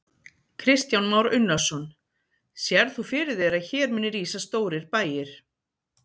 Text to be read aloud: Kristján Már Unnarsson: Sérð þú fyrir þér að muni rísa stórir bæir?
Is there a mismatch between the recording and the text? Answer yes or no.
yes